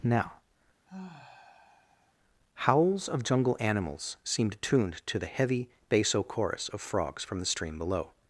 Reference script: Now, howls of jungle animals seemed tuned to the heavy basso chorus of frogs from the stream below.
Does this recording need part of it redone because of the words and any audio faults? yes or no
yes